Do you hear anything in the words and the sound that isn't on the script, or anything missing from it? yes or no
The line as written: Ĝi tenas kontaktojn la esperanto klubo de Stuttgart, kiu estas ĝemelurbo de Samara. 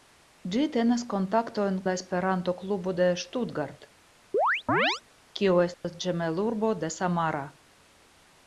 yes